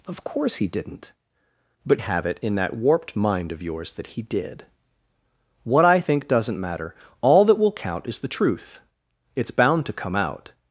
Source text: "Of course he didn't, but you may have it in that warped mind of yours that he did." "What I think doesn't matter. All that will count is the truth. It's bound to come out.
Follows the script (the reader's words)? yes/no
no